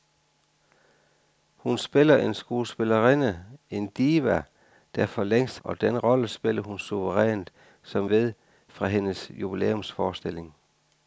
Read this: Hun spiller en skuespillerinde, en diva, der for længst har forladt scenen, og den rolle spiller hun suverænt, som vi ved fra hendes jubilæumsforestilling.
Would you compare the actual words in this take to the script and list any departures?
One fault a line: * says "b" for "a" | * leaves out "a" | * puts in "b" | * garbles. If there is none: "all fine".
* leaves out "har forladt scenen"
* leaves out "vi"